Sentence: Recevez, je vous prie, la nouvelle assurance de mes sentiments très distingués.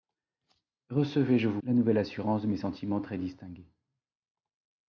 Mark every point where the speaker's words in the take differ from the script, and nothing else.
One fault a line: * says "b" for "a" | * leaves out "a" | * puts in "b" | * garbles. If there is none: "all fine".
* leaves out "prie"